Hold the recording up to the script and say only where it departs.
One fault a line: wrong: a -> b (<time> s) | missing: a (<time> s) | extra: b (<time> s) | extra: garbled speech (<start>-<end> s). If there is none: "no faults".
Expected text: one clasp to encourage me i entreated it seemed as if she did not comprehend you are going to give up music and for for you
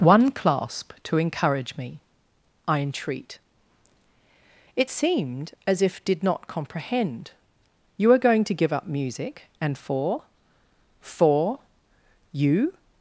wrong: entreated -> entreat (2.8 s)
missing: she (6.0 s)